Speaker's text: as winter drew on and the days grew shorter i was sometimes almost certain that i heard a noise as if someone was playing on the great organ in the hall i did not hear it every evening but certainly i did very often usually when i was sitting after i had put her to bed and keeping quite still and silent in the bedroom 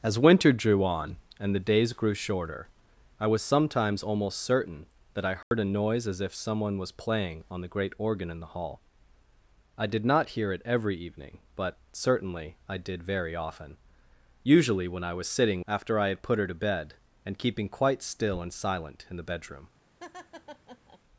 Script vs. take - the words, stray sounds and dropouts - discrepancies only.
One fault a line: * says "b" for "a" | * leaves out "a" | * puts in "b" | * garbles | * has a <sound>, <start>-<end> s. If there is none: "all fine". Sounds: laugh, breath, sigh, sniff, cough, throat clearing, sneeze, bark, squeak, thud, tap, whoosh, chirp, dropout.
* has a dropout, 5.4-5.5 s
* has a laugh, 20.0-21.0 s